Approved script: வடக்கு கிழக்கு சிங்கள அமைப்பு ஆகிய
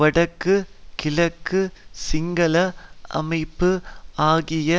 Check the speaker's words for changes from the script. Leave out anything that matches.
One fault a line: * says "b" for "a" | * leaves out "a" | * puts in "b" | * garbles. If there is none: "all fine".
all fine